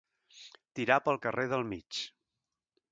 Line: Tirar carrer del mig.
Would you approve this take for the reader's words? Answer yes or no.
no